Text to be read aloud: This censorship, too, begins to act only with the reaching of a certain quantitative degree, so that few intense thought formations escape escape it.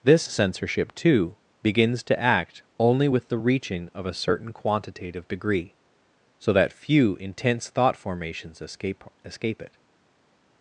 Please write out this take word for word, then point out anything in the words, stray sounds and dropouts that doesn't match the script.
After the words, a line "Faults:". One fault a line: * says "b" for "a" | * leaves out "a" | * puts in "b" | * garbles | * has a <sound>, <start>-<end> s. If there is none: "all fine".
This censorship, too, begins to act only with the reaching of a certain quantitative degree, so that few intense thought formations escape escape it.
Faults:
all fine